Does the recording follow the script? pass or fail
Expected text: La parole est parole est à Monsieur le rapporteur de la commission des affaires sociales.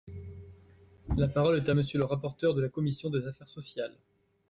fail